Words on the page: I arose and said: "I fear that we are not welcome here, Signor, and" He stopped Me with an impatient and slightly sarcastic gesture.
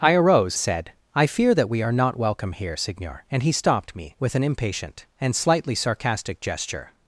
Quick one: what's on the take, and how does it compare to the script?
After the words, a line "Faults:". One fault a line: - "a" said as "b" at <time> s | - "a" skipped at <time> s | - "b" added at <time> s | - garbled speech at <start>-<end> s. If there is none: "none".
I arose said: "I fear that we are not welcome here, Signor, and" He stopped Me with an impatient and slightly sarcastic gesture.
Faults:
- "and" skipped at 0.6 s